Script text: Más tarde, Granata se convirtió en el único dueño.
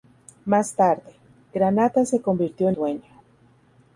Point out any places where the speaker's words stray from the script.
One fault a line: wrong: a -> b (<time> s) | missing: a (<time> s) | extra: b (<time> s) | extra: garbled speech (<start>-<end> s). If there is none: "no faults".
missing: el único (2.8 s)